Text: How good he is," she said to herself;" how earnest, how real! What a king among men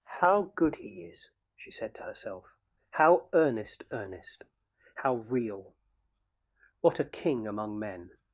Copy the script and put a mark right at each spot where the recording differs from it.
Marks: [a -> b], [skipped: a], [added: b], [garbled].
How good he is," she said to herself;" how earnest, [added: earnest] how real! What a king among men